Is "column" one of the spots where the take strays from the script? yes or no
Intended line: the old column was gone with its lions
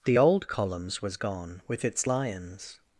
yes